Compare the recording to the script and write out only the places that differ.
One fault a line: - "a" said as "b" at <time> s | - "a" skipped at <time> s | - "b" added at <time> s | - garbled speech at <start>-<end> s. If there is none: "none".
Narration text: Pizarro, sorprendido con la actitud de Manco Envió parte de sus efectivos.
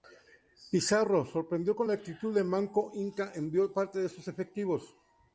- "Inca" added at 2.9 s